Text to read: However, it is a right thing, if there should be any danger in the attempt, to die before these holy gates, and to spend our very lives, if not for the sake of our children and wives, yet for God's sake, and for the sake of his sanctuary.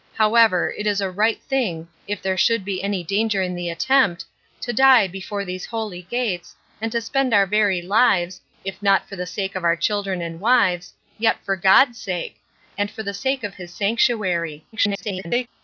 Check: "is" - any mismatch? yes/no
no